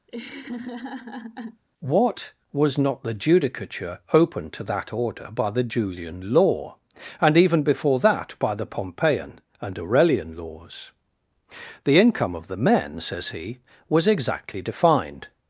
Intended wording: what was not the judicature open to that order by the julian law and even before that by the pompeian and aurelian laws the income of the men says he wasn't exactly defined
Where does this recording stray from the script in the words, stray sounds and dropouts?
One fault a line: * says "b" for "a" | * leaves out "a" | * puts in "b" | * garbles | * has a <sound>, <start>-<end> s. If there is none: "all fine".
* has a laugh, 0.1-1.6 s
* says "was" for "wasn't"